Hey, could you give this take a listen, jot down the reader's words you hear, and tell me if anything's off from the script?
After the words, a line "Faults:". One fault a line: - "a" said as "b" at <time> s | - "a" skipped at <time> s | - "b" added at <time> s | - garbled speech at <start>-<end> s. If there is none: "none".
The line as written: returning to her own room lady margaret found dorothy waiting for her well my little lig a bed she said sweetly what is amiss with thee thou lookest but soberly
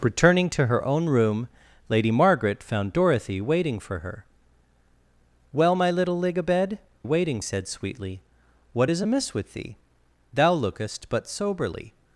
returning to her own room lady margaret found dorothy waiting for her well my little lig a bed waiting said sweetly what is amiss with thee thou lookest but soberly
Faults:
- "she" said as "waiting" at 7.0 s